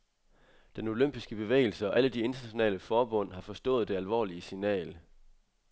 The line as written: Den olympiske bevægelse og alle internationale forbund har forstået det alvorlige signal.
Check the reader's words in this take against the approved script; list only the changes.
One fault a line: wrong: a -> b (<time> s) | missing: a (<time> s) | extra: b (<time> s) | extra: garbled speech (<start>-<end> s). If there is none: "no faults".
extra: de (2.1 s)